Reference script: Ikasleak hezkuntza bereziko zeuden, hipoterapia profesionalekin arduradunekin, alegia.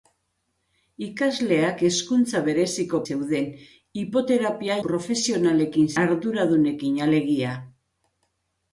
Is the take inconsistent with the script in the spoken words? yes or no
no